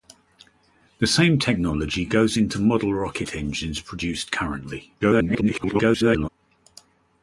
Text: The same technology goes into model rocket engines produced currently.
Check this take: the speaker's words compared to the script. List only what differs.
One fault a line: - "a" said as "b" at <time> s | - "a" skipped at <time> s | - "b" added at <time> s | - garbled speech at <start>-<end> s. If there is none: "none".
- garbled speech at 5.0-6.3 s